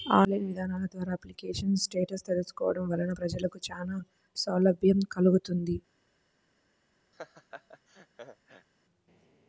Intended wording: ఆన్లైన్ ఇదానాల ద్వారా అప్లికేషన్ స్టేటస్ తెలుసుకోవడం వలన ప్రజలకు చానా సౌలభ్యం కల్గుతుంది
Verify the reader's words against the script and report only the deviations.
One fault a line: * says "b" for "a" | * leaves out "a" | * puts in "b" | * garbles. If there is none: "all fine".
all fine